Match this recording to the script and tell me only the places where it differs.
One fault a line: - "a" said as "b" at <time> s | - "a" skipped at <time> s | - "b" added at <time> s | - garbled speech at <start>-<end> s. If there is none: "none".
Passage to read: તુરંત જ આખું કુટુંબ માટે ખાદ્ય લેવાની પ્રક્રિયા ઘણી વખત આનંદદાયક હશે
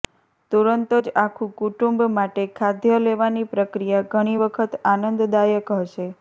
none